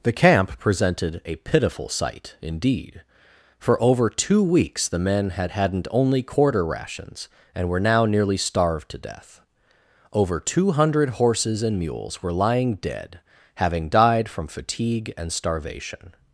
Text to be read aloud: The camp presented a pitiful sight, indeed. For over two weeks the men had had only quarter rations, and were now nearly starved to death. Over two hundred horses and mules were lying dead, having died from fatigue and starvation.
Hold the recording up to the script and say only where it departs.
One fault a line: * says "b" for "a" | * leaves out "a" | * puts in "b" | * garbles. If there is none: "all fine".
* says "hadn't" for "had"